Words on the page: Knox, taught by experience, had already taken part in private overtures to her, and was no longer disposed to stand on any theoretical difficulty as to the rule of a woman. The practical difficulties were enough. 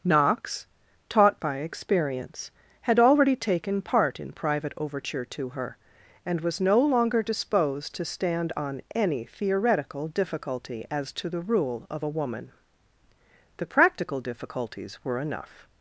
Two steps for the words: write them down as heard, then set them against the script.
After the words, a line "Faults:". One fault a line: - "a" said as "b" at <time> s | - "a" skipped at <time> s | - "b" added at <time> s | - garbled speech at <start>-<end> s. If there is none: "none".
Knox, taught by experience, had already taken part in private overture to her, and was no longer disposed to stand on any theoretical difficulty as to the rule of a woman. The practical difficulties were enough.
Faults:
- "overtures" said as "overture" at 4.8 s